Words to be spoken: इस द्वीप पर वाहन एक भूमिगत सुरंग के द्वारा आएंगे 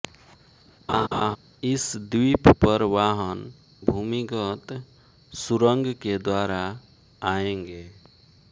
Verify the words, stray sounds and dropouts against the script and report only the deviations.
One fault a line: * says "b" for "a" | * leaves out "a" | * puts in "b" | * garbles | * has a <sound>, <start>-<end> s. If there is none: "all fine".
* has a laugh, 0.9-1.4 s
* leaves out "एक"